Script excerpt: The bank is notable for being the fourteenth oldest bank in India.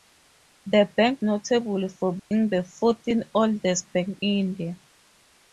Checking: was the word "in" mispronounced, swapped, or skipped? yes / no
yes